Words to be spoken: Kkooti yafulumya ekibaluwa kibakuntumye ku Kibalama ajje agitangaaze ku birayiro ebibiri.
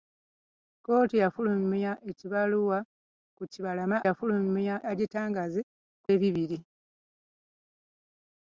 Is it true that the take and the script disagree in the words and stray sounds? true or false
true